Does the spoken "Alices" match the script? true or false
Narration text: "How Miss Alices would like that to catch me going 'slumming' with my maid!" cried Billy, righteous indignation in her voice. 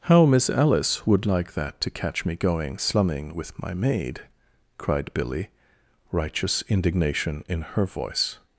false